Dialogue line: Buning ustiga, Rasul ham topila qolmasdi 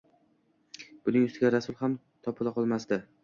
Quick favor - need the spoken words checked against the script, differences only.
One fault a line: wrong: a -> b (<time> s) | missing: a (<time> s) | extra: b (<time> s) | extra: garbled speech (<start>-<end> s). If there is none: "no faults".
no faults